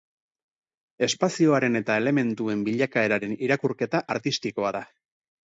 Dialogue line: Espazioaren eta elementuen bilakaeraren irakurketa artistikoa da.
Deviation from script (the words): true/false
false